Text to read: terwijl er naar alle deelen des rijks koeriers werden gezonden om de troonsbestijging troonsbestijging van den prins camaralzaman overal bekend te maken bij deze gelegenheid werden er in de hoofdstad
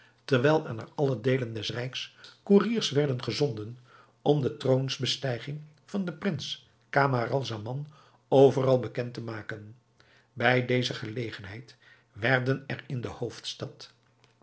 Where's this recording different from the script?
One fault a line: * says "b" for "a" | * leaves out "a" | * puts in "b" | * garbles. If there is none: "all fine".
* leaves out "troonsbestijging"